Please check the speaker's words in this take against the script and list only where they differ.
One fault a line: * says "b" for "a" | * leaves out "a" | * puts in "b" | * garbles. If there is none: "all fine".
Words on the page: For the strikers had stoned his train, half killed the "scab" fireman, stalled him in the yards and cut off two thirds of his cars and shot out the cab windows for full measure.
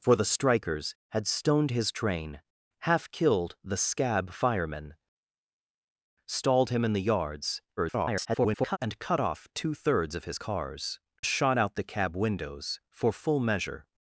* garbles
* leaves out "and"